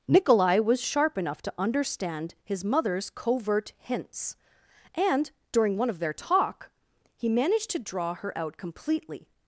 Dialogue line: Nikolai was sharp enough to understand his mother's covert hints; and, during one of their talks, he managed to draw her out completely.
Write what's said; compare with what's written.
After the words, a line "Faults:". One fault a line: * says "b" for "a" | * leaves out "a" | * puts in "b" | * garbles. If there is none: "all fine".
Nikolai was sharp enough to understand his mother's covert hints; and, during one of their talk, he managed to draw her out completely.
Faults:
* says "talk" for "talks"